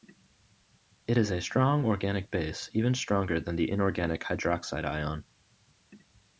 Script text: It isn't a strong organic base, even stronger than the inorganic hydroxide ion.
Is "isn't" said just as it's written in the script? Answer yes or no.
no